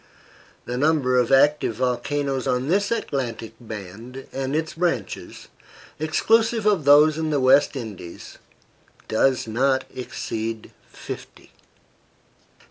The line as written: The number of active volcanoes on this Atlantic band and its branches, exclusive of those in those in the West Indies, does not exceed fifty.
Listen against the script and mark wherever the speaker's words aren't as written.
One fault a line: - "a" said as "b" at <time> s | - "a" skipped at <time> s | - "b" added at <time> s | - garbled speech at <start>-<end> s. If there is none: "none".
- "those in" skipped at 7.3 s